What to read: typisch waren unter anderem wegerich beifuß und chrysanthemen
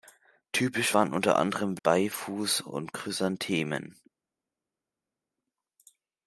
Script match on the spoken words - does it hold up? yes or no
no